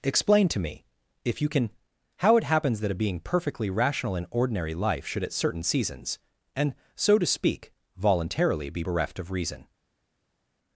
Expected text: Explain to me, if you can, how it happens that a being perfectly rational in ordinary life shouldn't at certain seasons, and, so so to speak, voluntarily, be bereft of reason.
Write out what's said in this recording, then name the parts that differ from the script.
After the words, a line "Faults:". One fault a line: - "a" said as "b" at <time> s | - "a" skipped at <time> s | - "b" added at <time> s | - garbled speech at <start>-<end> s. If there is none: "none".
Explain to me, if you can, how it happens that a being perfectly rational in ordinary life should at certain seasons, and, so to speak, voluntarily, be bereft of reason.
Faults:
- "shouldn't" said as "should" at 5.0 s
- "so" skipped at 7.2 s